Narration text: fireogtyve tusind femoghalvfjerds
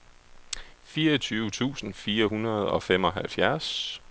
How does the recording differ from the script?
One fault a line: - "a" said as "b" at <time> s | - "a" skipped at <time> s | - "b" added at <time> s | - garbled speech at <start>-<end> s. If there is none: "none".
- "fire hundrede og" added at 1.9 s